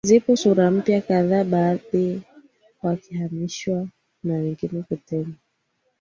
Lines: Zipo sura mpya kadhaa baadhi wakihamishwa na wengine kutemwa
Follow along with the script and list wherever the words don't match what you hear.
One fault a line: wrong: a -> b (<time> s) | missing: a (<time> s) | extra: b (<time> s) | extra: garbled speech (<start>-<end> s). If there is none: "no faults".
no faults